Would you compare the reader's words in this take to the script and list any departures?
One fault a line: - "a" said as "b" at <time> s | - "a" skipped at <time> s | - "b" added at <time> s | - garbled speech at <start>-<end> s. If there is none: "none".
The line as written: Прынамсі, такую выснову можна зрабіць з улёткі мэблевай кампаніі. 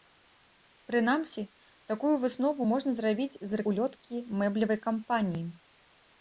none